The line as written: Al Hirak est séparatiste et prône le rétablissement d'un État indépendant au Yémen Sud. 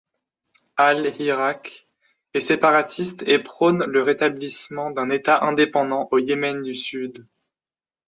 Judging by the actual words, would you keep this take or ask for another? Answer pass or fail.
fail